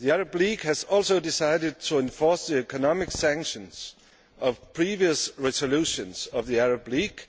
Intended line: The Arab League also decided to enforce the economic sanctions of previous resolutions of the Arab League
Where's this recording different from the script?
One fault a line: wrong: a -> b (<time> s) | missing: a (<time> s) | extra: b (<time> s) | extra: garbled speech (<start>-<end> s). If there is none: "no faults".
extra: has (0.6 s)